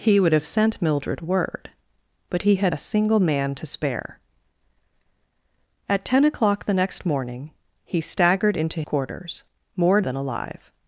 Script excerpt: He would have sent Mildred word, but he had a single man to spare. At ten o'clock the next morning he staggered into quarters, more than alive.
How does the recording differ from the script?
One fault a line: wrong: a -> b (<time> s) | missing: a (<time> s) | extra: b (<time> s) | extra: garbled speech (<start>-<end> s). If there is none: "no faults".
no faults